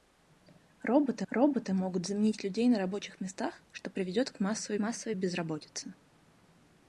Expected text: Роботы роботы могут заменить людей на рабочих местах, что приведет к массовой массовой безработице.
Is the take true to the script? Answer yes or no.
yes